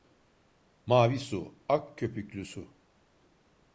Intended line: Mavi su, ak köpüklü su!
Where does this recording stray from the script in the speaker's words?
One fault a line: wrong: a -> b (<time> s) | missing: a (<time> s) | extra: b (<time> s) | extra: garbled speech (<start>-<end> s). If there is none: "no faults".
no faults